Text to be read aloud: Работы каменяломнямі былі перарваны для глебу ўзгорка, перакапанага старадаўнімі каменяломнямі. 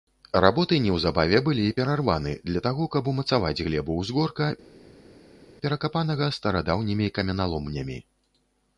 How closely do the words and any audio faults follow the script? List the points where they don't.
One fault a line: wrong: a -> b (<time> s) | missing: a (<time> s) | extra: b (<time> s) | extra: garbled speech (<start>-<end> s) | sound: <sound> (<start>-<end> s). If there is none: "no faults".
wrong: каменяломнямі -> неўзабаве (0.8 s)
extra: таго каб умацаваць (2.7 s)